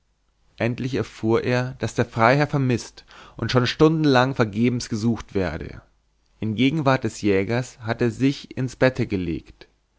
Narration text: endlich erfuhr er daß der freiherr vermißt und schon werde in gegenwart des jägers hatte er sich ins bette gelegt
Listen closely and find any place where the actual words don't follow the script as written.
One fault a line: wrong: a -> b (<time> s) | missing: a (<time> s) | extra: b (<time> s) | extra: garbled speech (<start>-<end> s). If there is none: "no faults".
extra: stundenlang vergebens gesucht (3.7 s)